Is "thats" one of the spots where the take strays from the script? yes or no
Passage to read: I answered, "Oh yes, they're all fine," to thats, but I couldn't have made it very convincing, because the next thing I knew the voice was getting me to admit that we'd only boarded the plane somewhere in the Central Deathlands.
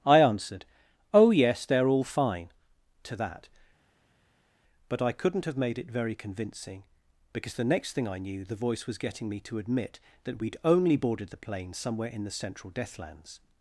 yes